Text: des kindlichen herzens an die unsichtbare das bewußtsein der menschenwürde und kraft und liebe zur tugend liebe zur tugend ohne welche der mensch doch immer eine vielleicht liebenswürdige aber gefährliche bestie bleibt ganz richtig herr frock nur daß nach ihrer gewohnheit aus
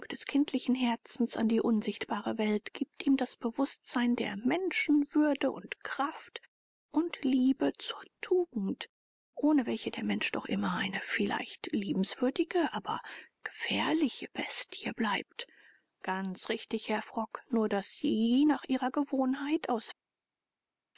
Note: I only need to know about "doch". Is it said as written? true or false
true